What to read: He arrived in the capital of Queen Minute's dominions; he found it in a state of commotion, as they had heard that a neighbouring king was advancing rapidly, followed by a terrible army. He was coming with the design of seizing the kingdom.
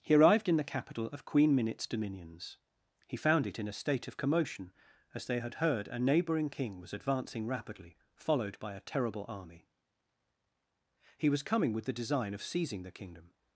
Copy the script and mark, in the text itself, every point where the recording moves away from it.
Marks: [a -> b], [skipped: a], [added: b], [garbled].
He arrived in the capital of Queen Minute's dominions; he found it in a state of commotion, as they had heard [skipped: that] a neighbouring king was advancing rapidly, followed by a terrible army. He was coming with the design of seizing the kingdom.